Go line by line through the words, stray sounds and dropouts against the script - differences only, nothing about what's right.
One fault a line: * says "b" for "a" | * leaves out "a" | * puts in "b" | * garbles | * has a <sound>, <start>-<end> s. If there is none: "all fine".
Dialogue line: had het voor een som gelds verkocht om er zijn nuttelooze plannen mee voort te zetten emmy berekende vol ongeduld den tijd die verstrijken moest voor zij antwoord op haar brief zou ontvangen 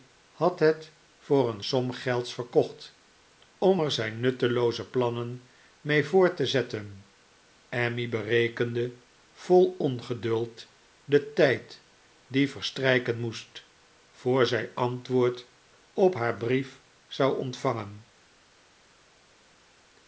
all fine